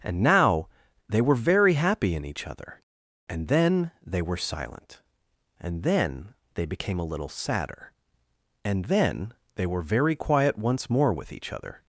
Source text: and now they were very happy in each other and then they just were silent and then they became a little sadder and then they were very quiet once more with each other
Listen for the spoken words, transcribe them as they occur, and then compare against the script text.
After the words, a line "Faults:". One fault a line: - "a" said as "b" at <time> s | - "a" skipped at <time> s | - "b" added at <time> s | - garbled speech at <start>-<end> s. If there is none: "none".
and now they were very happy in each other and then they were silent and then they became a little sadder and then they were very quiet once more with each other
Faults:
- "just" skipped at 4.2 s